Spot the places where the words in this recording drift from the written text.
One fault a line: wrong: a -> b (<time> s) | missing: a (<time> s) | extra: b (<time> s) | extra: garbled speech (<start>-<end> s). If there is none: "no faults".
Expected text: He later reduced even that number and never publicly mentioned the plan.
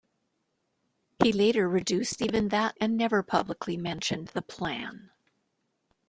missing: number (2.8 s)